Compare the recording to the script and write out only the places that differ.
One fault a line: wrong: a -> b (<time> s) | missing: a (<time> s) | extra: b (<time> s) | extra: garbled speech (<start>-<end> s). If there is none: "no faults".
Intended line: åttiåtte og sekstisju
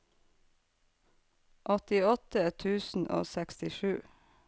extra: tusen (2.6 s)